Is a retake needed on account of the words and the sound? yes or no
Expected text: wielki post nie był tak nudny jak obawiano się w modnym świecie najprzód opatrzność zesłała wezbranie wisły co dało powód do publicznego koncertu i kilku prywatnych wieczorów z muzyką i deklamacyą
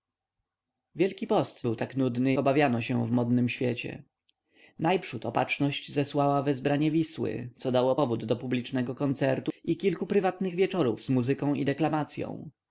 yes